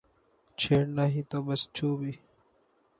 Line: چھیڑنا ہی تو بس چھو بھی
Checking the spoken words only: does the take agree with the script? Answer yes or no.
yes